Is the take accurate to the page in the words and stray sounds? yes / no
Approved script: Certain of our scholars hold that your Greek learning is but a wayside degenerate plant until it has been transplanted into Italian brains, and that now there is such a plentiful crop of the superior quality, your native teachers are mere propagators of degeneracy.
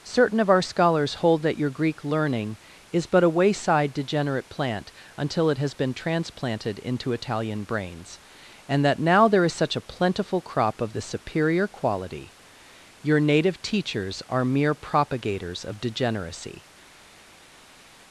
yes